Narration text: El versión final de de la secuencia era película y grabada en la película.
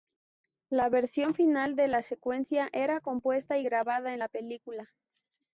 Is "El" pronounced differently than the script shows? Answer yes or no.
yes